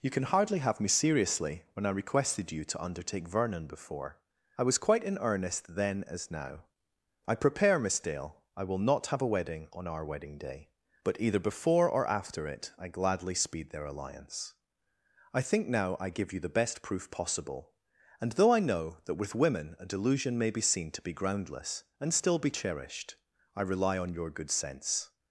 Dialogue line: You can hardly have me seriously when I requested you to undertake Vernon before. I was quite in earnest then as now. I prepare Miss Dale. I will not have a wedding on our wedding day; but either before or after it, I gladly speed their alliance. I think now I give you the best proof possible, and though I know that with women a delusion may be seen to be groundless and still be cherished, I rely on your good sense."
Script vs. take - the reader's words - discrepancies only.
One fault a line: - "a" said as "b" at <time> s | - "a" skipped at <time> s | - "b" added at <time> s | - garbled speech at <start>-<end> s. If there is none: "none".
none